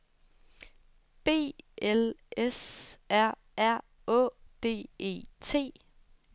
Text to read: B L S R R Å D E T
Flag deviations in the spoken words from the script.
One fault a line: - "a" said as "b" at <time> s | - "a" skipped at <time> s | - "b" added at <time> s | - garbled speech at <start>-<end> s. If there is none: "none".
none